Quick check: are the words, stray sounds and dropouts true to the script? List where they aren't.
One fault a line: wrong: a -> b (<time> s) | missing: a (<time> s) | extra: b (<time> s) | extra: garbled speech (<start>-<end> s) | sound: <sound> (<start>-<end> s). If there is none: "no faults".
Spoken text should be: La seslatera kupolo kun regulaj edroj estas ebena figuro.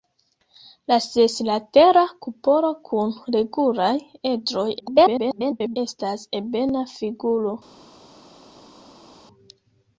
extra: garbled speech (4.8-5.8 s)